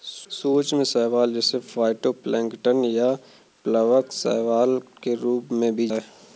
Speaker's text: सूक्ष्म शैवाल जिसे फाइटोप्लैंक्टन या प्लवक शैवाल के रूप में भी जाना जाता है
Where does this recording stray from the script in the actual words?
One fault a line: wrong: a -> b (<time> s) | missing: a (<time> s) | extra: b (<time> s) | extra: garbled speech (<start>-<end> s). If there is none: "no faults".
missing: जाना जाता (5.9 s)